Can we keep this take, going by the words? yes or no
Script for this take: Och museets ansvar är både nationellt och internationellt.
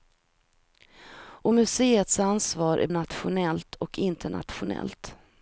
no